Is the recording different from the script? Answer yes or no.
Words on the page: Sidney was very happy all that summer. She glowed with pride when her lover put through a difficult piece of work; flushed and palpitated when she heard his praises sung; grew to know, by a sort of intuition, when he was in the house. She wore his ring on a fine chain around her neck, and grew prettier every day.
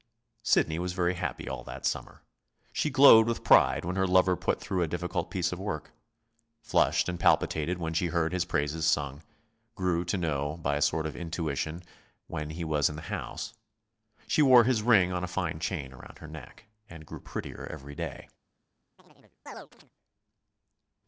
no